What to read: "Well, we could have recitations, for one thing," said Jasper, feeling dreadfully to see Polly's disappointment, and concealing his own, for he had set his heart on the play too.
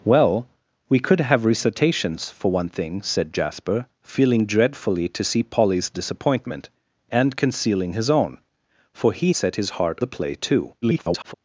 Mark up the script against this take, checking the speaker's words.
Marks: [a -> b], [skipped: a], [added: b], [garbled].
"Well, we could have recitations, for one thing," said Jasper, feeling dreadfully to see Polly's disappointment, and concealing his own, for he [skipped: had] set his heart [skipped: on] the play too. [garbled]